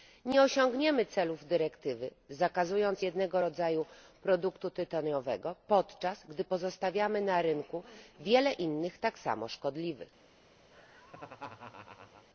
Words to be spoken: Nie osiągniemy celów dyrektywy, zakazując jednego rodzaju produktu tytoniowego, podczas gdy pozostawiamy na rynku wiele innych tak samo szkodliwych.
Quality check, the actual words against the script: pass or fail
pass